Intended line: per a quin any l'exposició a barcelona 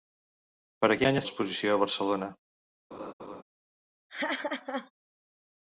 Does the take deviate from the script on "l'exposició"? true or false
false